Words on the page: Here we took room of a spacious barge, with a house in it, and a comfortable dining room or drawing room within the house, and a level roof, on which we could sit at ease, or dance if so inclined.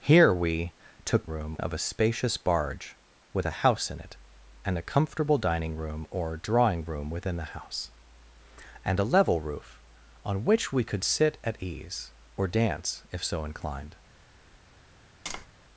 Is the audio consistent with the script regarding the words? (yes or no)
yes